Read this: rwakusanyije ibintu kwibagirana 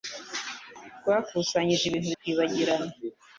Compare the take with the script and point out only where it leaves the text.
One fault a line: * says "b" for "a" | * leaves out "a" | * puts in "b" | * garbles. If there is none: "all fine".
all fine